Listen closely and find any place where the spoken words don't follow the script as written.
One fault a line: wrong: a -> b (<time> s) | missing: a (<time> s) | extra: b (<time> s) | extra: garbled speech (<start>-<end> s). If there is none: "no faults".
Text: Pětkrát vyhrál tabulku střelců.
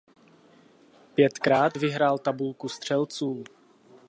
no faults